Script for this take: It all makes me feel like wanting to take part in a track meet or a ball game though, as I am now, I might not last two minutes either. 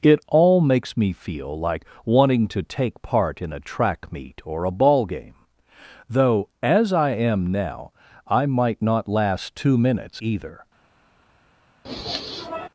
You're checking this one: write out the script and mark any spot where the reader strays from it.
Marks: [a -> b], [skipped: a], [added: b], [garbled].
It all makes me feel like wanting to take part in a track meet or a ball game though, as I am now, I might not last two minutes either.